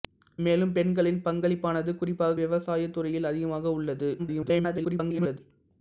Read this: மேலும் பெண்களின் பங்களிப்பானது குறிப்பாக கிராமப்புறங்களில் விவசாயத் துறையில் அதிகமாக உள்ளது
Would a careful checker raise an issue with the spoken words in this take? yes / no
yes